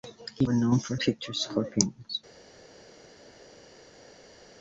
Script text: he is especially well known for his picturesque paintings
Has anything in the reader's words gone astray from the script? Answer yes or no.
yes